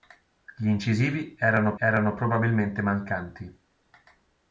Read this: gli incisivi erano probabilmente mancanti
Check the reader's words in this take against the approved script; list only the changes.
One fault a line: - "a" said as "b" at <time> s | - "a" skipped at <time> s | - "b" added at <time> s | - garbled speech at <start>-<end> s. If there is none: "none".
- "erano" added at 1.8 s